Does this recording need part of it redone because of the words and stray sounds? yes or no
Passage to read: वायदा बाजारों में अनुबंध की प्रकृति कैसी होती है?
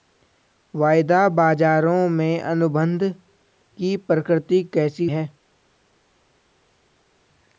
yes